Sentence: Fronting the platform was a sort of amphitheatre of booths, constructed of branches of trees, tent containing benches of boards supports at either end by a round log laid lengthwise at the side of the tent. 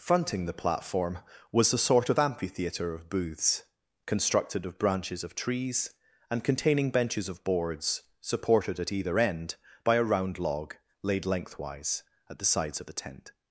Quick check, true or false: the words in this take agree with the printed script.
false